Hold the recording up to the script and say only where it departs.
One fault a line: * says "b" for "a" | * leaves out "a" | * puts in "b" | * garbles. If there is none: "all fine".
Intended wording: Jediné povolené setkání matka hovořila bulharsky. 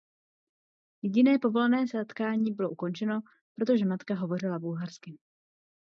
* puts in "bylo ukončeno protože"